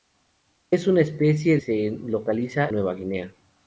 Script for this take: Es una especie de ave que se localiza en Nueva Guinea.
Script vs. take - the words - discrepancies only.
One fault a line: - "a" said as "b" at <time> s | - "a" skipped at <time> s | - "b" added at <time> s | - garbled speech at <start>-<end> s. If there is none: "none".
- "de ave que" skipped at 1.6 s
- "en" skipped at 2.7 s